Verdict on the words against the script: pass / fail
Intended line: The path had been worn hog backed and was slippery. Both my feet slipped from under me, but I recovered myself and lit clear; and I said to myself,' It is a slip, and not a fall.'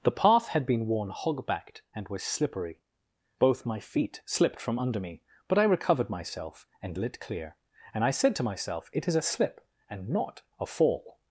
pass